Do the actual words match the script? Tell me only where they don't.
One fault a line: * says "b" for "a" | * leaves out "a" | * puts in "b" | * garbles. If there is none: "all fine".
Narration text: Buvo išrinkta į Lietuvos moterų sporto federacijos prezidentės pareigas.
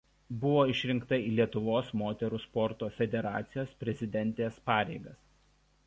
all fine